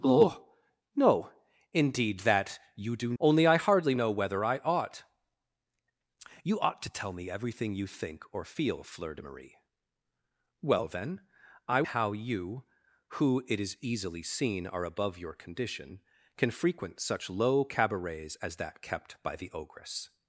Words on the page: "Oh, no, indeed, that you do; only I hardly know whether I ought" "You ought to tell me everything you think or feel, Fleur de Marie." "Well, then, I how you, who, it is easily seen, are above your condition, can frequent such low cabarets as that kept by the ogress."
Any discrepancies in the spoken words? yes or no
no